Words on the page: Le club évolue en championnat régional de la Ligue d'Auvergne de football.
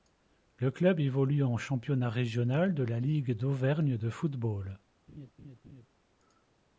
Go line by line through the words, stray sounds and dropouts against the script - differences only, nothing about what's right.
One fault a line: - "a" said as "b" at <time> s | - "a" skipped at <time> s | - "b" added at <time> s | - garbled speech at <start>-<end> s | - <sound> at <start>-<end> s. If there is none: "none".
- laugh at 5.1-5.9 s